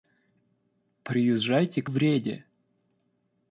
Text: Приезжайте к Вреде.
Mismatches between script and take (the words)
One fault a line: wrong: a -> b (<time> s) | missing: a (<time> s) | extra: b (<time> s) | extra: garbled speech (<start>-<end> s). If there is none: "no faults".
no faults